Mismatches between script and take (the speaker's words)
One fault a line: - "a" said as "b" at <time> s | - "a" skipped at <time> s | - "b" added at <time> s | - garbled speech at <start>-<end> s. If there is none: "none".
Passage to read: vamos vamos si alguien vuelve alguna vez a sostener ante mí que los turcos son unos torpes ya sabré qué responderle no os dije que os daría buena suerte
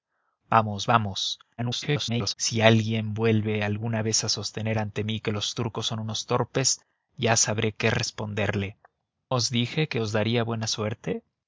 - garbled speech at 1.6-2.3 s
- "no" skipped at 8.8 s